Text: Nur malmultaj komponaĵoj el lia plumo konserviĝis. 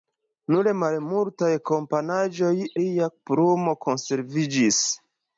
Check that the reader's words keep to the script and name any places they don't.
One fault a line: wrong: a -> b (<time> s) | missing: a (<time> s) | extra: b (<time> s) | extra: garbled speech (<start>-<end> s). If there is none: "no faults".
missing: el (2.5 s)